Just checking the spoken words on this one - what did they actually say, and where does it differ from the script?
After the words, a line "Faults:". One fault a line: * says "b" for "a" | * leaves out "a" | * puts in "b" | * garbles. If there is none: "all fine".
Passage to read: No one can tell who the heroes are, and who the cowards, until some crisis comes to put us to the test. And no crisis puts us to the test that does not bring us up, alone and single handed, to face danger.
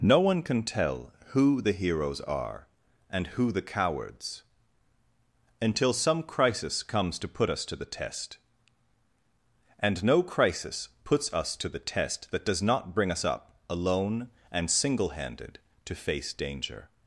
No one can tell who the heroes are, and who the cowards, until some crisis comes to put us to the test. And no crisis puts us to the test that does not bring us up, alone and single handed, to face danger.
Faults:
all fine